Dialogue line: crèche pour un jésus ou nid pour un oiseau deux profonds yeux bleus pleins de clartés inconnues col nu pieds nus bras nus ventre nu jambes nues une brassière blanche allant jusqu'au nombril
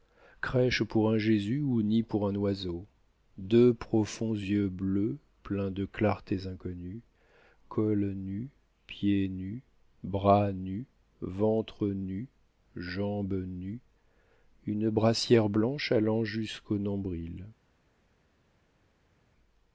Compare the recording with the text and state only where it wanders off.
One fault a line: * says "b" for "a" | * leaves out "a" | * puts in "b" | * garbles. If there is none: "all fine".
all fine